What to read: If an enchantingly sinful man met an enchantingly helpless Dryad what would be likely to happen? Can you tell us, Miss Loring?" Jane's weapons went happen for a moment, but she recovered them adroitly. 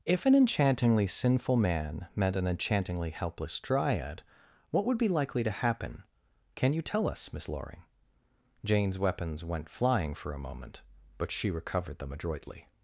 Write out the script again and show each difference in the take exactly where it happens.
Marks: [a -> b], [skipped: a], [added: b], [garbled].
If an enchantingly sinful man met an enchantingly helpless Dryad what would be likely to happen? Can you tell us, Miss Loring?" Jane's weapons went [happen -> flying] for a moment, but she recovered them adroitly.